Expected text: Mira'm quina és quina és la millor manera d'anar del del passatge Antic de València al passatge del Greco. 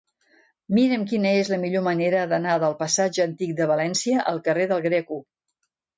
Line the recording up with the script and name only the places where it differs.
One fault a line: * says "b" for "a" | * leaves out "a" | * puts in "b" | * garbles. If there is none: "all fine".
* leaves out "quina és"
* leaves out "del"
* says "carrer" for "passatge"